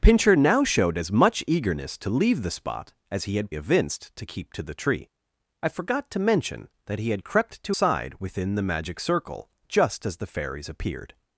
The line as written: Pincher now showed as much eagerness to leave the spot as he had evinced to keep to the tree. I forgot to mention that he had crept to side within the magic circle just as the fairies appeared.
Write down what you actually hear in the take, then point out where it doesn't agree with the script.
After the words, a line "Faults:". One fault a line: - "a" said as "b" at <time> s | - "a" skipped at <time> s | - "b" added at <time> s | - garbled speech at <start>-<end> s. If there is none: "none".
Pincher now showed as much eagerness to leave the spot as he had evinced to keep to the tree. I forgot to mention that he had crept to side within the magic circle just as the fairies appeared.
Faults:
none